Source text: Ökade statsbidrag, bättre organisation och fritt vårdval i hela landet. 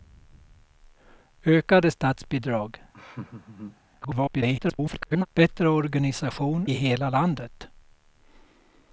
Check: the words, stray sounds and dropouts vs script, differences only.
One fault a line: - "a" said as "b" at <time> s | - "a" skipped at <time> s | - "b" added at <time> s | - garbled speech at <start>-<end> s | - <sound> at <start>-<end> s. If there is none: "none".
- laugh at 2.9-3.8 s
- garbled speech at 4.0-5.3 s
- "och fritt vårdval" skipped at 6.7 s